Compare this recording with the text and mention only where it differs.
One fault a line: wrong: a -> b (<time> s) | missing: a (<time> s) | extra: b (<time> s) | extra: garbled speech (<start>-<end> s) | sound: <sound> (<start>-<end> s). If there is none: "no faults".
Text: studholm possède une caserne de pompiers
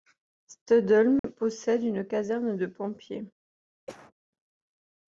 sound: dropout (1.2-1.2 s)
sound: cough (3.9-4.1 s)